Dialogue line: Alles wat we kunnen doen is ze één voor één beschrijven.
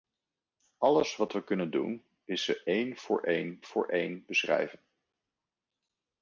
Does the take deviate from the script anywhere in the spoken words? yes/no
yes